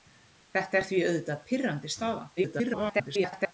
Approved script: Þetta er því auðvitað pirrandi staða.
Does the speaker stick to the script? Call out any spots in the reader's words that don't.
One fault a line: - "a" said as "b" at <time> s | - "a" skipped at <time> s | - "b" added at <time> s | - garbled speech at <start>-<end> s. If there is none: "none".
- garbled speech at 2.4-3.5 s